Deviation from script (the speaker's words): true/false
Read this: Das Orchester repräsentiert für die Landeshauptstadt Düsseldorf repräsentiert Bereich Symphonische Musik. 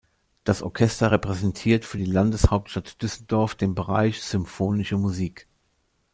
true